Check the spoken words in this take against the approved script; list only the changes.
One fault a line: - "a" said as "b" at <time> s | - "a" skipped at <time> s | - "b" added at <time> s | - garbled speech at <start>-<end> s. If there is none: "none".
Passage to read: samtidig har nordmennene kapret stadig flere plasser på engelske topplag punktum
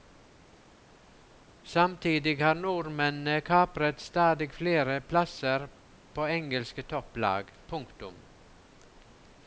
none